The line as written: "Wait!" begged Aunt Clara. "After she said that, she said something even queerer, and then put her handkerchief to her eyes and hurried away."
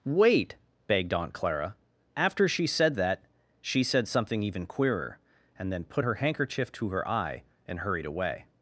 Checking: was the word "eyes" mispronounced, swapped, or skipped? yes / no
yes